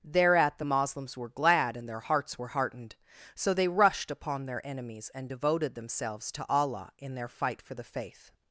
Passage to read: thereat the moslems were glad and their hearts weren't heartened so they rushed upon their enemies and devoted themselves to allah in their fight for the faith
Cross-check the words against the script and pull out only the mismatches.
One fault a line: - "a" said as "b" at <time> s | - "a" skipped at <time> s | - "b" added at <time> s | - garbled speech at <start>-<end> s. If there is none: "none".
- "weren't" said as "were" at 2.4 s